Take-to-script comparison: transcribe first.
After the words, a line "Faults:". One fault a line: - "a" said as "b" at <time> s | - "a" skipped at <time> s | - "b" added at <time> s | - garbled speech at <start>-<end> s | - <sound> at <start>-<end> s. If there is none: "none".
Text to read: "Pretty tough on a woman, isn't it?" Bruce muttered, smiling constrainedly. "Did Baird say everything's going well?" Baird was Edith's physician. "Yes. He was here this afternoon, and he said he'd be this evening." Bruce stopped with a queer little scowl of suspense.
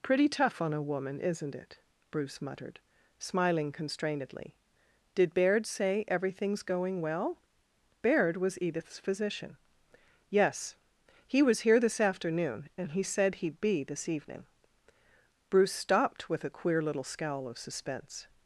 "Pretty tough on a woman, isn't it?" Bruce muttered, smiling constrainedly. "Did Baird say everything's going well?" Baird was Edith's physician. "Yes. He was here this afternoon, and he said he'd be this evening." Bruce stopped with a queer little scowl of suspense.
Faults:
none